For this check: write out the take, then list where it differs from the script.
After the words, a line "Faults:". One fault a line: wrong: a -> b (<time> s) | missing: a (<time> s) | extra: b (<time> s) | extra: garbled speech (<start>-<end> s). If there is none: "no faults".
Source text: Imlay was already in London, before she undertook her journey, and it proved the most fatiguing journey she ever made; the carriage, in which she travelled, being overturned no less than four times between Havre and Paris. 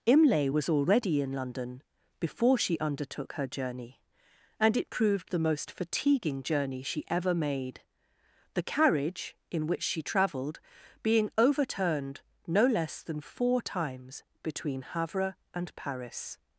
Imlay was already in London, before she undertook her journey, and it proved the most fatiguing journey she ever made; the carriage, in which she travelled, being overturned no less than four times between Havre and Paris.
Faults:
no faults